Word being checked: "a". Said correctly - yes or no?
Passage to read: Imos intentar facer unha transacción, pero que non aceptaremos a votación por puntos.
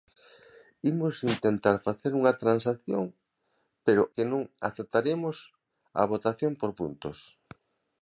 yes